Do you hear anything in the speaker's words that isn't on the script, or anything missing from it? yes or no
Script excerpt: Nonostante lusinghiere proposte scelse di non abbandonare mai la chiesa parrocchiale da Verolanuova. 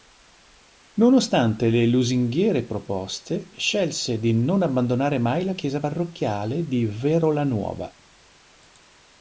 yes